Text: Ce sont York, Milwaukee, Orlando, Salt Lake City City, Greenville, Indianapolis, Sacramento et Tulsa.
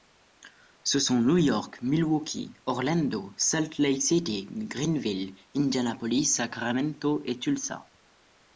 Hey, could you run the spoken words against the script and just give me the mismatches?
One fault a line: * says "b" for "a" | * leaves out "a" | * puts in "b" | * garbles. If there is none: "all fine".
* puts in "New"
* leaves out "City"